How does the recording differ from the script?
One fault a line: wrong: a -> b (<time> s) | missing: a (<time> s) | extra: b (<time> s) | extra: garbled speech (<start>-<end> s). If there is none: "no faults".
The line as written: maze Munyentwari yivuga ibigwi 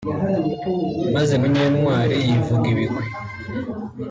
no faults